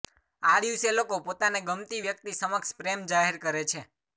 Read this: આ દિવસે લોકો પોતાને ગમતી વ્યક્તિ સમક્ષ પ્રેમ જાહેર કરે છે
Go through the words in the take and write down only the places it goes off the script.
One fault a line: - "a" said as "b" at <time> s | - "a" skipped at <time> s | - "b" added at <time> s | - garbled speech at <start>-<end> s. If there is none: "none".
none